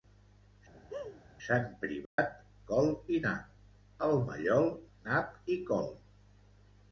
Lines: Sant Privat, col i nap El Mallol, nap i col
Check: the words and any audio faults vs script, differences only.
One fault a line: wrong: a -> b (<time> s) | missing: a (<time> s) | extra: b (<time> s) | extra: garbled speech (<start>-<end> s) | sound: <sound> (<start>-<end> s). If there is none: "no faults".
sound: laugh (0.7-1.2 s)
sound: dropout (2.1-2.2 s)